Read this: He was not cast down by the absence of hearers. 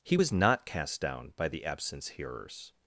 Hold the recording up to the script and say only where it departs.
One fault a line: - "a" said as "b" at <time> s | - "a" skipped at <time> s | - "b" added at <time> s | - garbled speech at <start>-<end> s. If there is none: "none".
- "of" skipped at 2.1 s